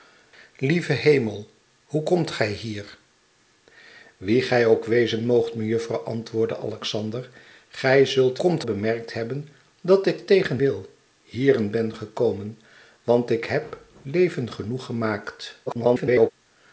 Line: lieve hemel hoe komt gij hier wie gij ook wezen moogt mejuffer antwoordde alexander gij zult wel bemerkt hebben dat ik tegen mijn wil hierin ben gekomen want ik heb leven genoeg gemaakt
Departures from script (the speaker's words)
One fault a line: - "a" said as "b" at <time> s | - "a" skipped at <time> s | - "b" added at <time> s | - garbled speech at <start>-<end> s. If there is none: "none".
- "wel" said as "komt" at 8.4 s
- "mijn" skipped at 10.6 s
- garbled speech at 15.7-16.3 s